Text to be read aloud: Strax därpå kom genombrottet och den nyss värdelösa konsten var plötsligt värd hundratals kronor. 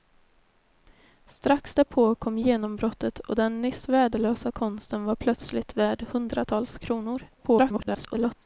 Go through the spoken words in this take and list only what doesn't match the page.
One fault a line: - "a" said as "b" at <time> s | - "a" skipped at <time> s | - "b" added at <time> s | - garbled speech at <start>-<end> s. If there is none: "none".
- garbled speech at 7.4-8.4 s